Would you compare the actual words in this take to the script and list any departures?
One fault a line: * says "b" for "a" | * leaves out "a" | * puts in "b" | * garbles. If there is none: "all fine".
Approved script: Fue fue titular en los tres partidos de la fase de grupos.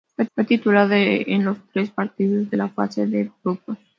all fine